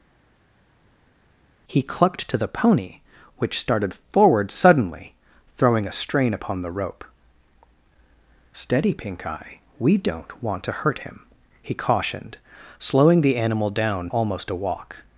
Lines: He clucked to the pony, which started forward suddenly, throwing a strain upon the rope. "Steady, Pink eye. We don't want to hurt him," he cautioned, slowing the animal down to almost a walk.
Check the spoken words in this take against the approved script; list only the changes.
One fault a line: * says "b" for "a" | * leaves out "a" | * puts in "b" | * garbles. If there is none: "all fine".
* leaves out "to"